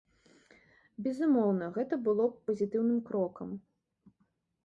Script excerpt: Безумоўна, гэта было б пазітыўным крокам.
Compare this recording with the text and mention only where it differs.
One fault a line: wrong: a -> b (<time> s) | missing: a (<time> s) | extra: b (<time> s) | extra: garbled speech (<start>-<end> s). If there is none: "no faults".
no faults